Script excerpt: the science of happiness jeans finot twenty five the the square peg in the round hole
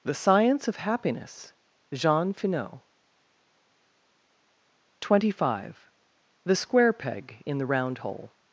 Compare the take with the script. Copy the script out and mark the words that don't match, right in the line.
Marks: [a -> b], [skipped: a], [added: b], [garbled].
the science of happiness [jeans -> jean] finot twenty five the [skipped: the] square peg in the round hole